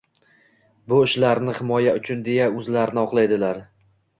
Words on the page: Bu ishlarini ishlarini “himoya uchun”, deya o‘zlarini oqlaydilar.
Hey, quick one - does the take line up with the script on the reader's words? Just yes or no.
no